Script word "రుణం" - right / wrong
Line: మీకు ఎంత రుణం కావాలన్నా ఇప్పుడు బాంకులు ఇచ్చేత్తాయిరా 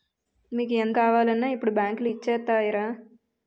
wrong